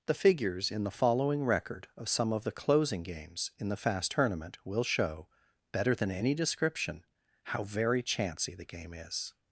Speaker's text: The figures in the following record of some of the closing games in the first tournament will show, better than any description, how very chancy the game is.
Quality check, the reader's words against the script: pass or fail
fail